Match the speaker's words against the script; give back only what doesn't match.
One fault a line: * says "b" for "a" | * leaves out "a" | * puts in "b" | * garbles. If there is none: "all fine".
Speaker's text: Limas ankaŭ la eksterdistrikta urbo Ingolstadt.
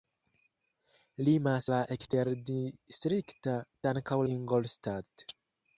* leaves out "ankaŭ"
* says "ankaŭ" for "urbo"